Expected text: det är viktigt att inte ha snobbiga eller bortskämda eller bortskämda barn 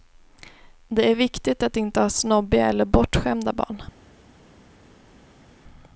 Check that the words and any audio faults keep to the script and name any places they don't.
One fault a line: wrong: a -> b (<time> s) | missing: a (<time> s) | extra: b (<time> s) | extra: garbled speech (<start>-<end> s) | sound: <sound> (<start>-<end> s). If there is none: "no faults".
missing: eller bortskämda (3.5 s)